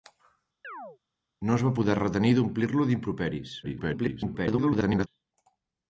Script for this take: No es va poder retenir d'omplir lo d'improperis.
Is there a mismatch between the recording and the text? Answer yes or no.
yes